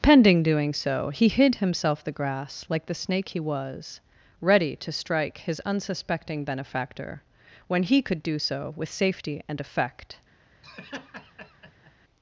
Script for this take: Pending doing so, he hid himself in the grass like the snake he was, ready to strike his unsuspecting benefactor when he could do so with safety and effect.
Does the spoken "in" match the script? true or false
false